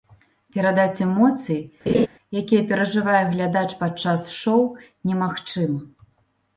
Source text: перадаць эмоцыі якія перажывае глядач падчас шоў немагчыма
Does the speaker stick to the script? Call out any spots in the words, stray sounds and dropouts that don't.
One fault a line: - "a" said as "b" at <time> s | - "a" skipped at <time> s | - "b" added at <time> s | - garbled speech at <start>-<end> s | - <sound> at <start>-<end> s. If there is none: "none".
- laugh at 1.9-2.1 s